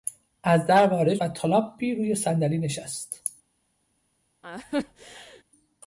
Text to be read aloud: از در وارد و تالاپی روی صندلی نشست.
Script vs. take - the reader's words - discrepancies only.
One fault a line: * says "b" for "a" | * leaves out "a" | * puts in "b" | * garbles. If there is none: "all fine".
all fine